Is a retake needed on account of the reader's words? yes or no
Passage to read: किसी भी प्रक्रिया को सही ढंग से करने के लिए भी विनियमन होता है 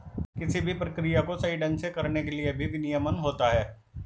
no